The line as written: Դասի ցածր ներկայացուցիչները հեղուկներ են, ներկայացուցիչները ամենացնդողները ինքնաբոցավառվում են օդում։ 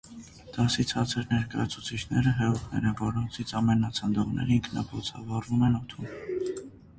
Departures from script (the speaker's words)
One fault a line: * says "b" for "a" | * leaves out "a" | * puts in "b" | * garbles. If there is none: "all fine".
* says "որոնցից" for "ներկայացուցիչները"